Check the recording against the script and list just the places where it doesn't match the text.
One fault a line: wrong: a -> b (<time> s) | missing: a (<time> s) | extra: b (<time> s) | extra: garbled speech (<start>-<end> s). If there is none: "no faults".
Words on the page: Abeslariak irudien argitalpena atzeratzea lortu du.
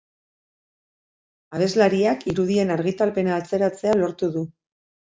no faults